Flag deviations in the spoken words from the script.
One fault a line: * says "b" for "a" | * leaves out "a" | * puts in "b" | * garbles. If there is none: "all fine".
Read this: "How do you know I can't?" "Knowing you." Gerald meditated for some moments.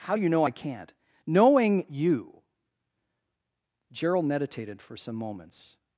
all fine